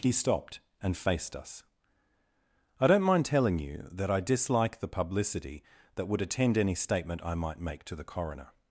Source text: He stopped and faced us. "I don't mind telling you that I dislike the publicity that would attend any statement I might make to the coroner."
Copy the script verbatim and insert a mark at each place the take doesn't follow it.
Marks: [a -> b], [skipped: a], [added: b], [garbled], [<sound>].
He stopped and faced us. "I don't mind telling you that I dislike the publicity that would attend any statement I might make to the coroner."